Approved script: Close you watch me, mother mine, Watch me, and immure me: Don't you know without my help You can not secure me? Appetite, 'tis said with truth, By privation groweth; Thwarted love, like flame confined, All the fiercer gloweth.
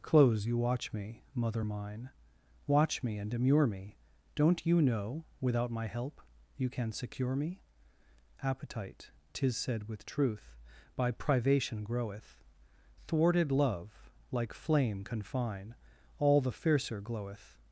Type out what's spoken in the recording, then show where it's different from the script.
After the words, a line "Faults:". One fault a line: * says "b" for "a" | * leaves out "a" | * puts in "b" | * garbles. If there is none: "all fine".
Close you watch me, mother mine, Watch me, and immure me: Don't you know without my help You can secure me? Appetite, 'tis said with truth, By privation groweth; Thwarted love, like flame confine, All the fiercer gloweth.
Faults:
* leaves out "not"
* says "confine" for "confined"